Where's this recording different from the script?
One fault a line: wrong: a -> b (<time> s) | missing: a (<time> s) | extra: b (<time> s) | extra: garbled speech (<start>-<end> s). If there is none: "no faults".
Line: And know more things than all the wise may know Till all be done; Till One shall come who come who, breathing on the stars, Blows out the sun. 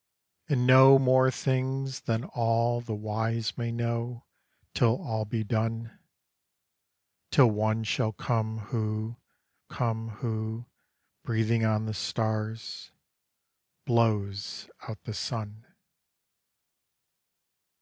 no faults